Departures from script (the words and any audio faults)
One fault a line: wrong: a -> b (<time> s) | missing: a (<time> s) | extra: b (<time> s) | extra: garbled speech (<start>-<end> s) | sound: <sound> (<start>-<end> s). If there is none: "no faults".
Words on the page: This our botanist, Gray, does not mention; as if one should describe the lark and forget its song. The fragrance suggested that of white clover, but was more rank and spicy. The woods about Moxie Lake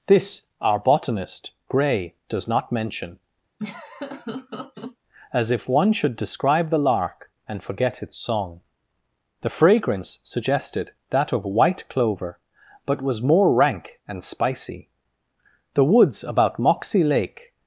sound: laugh (3.6-5.0 s)